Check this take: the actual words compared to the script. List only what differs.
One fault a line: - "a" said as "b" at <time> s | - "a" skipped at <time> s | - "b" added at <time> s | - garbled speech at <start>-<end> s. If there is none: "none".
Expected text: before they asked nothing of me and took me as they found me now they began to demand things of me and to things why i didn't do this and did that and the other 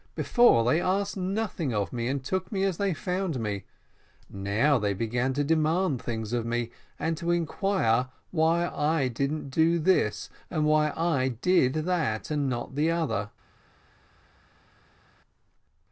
- "things" said as "inquire" at 7.3 s
- "why i" added at 10.6 s
- "not" added at 12.5 s